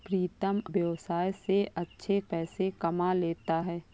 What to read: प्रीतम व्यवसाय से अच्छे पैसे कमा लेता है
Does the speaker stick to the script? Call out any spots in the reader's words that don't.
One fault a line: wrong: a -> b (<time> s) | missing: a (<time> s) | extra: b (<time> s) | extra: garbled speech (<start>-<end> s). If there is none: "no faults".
no faults